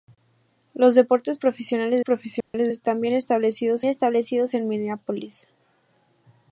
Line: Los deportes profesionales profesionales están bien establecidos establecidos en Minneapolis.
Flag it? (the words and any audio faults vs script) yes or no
yes